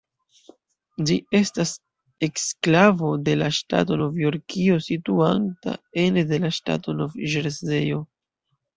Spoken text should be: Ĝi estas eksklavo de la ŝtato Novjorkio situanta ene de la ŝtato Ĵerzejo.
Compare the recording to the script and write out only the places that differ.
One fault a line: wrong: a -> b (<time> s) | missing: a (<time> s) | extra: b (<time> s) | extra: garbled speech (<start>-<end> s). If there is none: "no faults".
extra: Nov (7.0 s)